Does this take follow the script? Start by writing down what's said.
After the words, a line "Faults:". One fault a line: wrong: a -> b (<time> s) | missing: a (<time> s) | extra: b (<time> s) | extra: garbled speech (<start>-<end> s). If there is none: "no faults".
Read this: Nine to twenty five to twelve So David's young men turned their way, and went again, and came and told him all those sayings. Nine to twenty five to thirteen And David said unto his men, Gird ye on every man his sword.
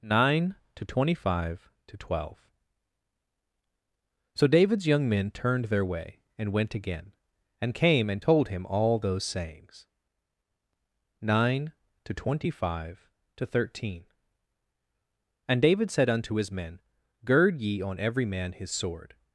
Nine to twenty five to twelve So David's young men turned their way, and went again, and came and told him all those sayings. Nine to twenty five to thirteen And David said unto his men, Gird ye on every man his sword.
Faults:
no faults